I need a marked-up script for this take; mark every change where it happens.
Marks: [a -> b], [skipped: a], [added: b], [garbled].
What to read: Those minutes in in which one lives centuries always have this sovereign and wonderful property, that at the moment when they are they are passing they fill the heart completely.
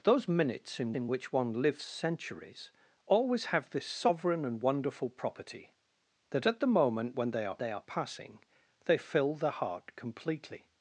Those minutes in in which one lives centuries always have this sovereign and wonderful property, that at the moment when they are they are passing they fill the heart completely.